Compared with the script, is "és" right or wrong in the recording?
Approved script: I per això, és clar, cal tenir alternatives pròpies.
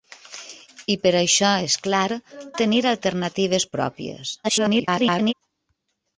right